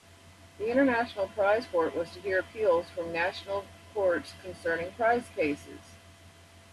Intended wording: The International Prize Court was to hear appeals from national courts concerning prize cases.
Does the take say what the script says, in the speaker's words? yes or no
yes